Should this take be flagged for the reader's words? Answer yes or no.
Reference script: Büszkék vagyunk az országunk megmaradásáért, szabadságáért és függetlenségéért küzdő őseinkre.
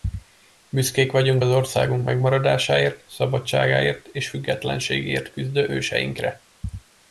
no